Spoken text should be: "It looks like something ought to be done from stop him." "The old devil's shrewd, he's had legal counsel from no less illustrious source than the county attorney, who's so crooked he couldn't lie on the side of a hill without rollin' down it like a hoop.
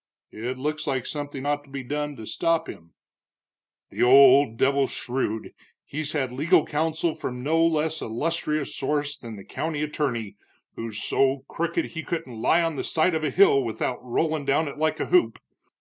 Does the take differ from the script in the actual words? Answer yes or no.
yes